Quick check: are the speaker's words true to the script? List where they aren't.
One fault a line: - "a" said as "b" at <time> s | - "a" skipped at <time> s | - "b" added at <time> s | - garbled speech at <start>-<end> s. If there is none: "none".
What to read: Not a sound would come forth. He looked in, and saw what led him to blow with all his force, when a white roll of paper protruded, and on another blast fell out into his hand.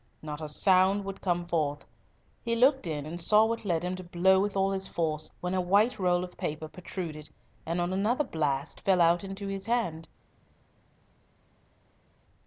none